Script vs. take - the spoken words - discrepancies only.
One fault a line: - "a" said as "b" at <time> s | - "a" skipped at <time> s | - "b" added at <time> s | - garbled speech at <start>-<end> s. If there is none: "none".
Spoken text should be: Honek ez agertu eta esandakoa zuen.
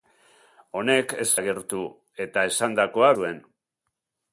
none